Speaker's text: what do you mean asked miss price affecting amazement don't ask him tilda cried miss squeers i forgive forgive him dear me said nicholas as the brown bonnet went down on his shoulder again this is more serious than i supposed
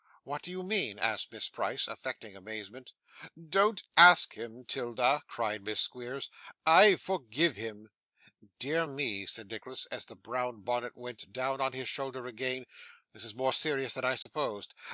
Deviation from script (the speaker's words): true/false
true